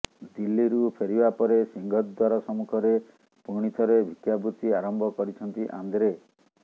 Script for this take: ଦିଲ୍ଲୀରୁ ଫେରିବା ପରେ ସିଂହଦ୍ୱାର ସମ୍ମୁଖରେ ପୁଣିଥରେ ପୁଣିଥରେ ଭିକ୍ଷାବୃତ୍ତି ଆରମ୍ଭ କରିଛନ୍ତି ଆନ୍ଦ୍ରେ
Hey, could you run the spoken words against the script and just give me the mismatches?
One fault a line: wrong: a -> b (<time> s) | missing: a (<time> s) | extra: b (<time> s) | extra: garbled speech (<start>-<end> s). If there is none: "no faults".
missing: ପୁଣିଥରେ (4.0 s)